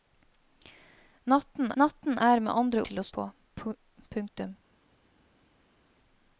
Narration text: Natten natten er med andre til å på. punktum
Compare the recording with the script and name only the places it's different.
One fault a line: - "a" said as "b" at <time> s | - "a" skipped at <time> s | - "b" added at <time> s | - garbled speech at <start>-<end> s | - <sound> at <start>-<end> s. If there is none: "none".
none